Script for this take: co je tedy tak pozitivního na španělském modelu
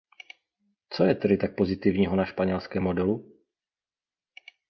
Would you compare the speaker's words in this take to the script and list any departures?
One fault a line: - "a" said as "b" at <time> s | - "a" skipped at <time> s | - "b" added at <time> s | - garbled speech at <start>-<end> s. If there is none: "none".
none